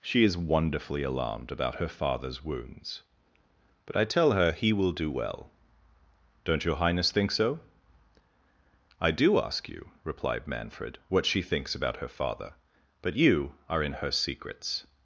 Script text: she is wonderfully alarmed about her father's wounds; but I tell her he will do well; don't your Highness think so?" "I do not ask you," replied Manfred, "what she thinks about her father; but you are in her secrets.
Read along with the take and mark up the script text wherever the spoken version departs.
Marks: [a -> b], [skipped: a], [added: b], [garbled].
she is wonderfully alarmed about her father's wounds; but I tell her he will do well; don't your Highness think so?" "I do [skipped: not] ask you," replied Manfred, "what she thinks about her father; but you are in her secrets.